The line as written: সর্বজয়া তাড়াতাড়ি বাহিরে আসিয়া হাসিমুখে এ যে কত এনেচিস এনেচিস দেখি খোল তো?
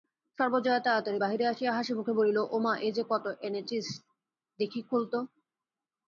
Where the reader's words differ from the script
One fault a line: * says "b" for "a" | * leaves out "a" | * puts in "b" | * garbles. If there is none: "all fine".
* puts in "বলিল ওমা"
* leaves out "এনেচিস"